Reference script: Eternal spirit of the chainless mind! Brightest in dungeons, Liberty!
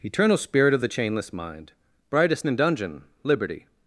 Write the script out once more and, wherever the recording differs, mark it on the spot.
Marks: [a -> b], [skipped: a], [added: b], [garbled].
Eternal spirit of the chainless mind! Brightest in [dungeons, -> dungeon] Liberty!